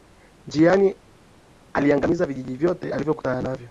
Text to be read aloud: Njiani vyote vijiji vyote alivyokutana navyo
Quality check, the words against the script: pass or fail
fail